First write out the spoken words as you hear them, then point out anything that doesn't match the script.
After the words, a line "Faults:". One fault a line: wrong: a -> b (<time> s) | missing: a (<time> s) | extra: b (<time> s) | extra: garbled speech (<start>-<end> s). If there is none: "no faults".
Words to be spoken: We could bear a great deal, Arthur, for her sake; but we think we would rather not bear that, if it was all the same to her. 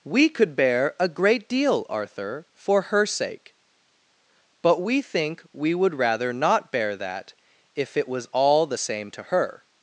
We could bear a great deal, Arthur, for her sake; but we think we would rather not bear that, if it was all the same to her.
Faults:
no faults